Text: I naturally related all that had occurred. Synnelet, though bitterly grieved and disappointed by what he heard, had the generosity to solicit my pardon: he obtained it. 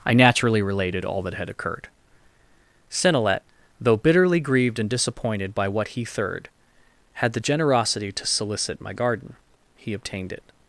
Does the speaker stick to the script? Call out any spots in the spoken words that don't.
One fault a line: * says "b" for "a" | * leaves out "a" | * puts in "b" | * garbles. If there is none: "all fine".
* says "third" for "heard"
* says "garden" for "pardon"